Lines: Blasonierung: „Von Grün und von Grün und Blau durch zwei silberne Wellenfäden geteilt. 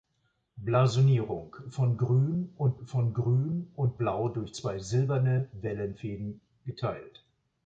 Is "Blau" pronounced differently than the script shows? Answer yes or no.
no